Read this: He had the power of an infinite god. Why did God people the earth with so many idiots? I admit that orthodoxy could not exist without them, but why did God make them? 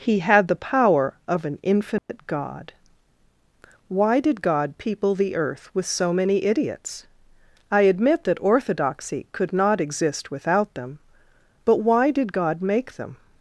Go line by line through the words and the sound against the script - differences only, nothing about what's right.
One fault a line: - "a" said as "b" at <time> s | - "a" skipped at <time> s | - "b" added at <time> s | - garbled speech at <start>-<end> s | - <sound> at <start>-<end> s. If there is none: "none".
- dropout at 2.0-2.1 s